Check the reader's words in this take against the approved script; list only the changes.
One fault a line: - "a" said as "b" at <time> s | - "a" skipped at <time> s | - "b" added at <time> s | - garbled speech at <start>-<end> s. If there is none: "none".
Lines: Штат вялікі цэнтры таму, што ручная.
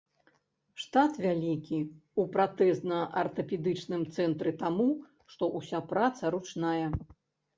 - "ў пратэзна артапедычным" added at 1.8 s
- "ўся праца" added at 5.6 s